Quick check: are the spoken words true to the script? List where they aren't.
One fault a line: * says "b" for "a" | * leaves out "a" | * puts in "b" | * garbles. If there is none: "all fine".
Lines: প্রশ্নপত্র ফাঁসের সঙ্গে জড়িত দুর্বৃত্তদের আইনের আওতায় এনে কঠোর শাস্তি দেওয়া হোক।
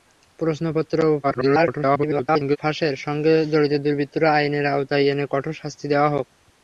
* garbles